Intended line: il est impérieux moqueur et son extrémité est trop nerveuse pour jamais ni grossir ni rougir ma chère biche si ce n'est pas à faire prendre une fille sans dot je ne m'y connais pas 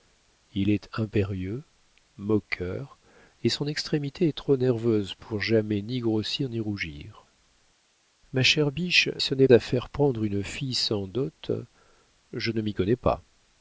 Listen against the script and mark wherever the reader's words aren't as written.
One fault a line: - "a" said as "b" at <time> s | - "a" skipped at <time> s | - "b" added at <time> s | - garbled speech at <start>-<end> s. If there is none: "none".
- "si" skipped at 9.1 s
- "pas" skipped at 9.5 s